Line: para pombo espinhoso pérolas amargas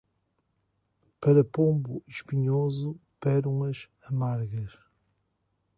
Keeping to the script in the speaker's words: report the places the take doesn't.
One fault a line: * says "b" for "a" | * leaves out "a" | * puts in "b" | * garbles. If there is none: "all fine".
all fine